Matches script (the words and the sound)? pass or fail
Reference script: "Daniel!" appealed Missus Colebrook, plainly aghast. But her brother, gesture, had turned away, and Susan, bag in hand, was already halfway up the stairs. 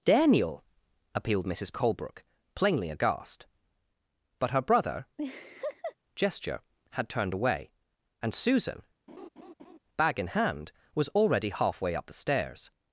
fail